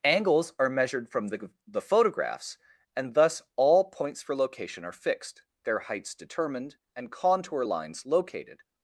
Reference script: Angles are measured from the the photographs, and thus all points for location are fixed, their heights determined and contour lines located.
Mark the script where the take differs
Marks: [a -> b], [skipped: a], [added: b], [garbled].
Angles are measured from the the photographs, and thus all points for location are fixed, their heights determined and contour lines located.